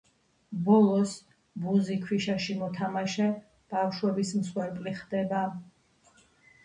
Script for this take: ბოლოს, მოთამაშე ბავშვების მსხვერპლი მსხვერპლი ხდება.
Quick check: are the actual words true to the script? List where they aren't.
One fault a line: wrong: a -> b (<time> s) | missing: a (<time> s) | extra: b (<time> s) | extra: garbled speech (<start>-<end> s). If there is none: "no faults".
extra: ბუზი ქვიშაში (1.6 s)
missing: მსხვერპლი (4.9 s)